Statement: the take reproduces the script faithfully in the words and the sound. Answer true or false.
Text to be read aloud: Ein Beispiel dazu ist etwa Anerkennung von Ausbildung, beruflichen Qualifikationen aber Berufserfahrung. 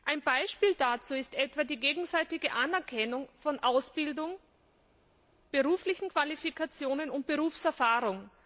false